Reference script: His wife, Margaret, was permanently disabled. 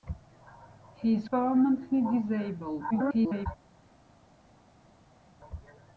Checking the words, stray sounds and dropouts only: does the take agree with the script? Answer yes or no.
no